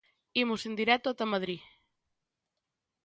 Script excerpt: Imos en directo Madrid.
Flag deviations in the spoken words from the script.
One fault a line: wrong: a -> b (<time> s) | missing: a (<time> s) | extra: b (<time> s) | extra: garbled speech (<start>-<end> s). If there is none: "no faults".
extra: ata (1.1 s)